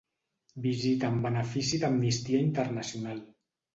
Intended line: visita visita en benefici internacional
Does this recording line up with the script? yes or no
no